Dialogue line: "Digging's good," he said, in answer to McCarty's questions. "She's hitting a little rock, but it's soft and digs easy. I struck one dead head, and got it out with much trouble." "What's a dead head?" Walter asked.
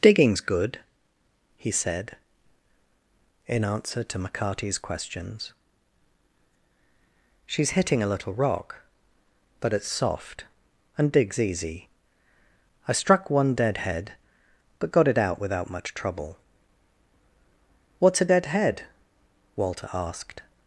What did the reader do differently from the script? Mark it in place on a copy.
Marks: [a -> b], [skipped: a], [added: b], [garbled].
"Digging's good," he said, in answer to McCarty's questions. "She's hitting a little rock, but it's soft and digs easy. I struck one dead head, [and -> but] got it out [with -> without] much trouble." "What's a dead head?" Walter asked.